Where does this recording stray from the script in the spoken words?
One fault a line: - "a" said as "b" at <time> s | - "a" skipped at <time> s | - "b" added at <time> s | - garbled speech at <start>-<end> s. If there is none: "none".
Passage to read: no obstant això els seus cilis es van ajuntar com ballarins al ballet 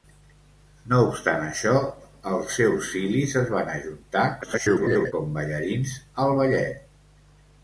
- garbled speech at 4.4-5.1 s